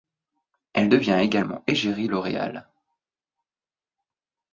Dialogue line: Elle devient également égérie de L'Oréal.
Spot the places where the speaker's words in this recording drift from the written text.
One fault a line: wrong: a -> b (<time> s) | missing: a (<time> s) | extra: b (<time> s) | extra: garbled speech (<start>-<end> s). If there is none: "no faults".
missing: de (2.1 s)